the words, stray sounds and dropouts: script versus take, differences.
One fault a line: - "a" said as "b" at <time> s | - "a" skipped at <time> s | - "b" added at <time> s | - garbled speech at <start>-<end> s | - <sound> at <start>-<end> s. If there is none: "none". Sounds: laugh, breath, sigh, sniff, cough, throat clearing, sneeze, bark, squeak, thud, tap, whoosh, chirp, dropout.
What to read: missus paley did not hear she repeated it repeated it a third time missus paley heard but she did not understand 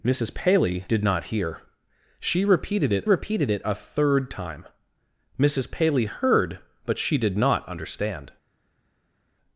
none